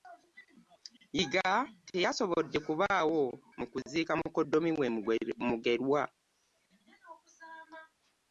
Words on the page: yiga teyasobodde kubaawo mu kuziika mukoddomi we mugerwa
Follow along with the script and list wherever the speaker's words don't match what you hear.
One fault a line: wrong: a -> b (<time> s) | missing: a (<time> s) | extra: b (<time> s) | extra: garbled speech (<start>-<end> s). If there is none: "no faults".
no faults